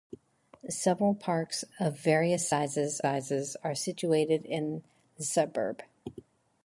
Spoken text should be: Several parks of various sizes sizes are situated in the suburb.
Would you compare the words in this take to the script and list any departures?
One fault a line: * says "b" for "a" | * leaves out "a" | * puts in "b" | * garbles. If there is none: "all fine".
all fine